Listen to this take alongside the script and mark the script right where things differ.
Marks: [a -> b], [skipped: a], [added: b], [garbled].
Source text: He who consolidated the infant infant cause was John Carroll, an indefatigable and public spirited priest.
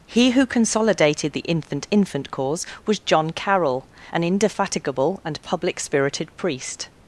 He who consolidated the infant infant cause was John Carroll, an indefatigable and public spirited priest.